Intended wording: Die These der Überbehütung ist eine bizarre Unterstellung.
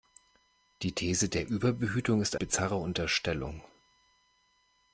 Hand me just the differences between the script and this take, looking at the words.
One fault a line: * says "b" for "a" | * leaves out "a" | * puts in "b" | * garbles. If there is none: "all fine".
* leaves out "eine"